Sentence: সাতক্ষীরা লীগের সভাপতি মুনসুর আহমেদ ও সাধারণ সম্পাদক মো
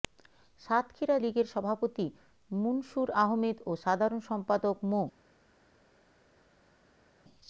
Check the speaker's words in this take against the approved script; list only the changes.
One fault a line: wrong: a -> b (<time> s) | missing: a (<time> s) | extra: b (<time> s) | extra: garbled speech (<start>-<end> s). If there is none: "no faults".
no faults